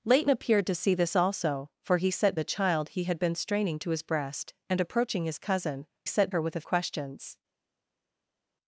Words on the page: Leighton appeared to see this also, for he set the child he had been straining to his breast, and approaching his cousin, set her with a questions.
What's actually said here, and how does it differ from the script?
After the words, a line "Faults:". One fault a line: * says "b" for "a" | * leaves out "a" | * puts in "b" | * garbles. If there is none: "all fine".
Leighton appeared to see this also, for he set the child he had been straining to his breast, and approaching his cousin, set her with a questions.
Faults:
all fine